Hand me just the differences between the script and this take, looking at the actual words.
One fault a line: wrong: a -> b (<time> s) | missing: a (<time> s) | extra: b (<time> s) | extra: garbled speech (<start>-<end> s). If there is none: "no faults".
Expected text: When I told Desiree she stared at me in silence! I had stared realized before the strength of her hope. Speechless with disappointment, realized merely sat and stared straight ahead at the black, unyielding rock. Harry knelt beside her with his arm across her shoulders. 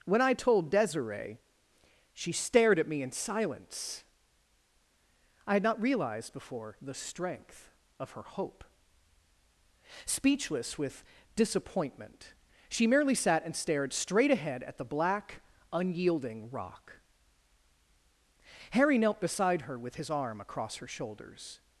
wrong: stared -> not (5.6 s)
wrong: realized -> she (12.7 s)